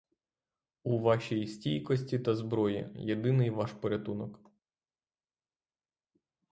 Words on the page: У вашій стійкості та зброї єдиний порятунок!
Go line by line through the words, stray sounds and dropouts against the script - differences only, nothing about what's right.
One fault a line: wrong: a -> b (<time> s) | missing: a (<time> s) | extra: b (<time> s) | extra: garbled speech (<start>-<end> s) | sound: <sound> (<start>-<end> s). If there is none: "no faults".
extra: ваш (3.5 s)